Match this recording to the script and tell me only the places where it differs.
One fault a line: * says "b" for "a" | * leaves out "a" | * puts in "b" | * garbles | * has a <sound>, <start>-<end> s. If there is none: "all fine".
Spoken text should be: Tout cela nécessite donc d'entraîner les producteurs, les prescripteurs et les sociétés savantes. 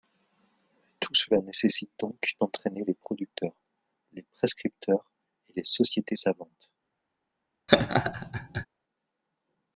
* has a laugh, 7.7-8.7 s